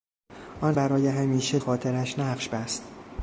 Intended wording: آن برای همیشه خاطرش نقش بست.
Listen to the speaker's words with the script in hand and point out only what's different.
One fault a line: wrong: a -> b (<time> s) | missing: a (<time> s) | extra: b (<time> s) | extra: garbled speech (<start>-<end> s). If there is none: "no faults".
no faults